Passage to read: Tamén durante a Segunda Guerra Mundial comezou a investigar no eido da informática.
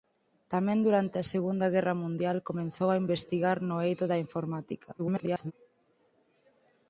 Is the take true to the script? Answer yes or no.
no